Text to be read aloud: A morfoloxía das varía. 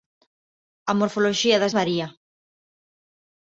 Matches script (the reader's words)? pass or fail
pass